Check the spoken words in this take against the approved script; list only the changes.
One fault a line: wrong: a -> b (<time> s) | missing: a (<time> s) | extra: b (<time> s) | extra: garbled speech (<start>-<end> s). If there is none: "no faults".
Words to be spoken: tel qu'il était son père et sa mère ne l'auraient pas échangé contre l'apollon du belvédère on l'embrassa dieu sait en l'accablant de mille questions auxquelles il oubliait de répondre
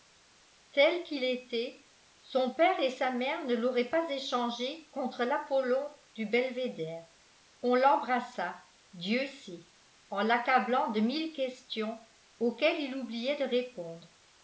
no faults